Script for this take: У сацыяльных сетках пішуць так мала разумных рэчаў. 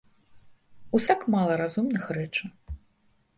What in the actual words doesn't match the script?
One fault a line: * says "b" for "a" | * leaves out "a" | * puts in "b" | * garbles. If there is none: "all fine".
* leaves out "сацыяльных сетках пішуць"